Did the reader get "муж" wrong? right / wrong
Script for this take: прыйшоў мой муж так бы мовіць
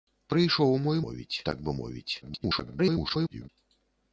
wrong